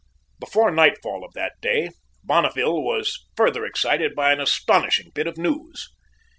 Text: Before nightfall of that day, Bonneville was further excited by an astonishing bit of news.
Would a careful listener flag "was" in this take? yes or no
no